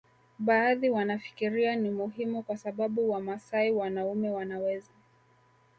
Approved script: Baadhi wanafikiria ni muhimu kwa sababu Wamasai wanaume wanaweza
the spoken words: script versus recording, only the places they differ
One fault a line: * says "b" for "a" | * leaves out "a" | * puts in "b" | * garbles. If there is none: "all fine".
all fine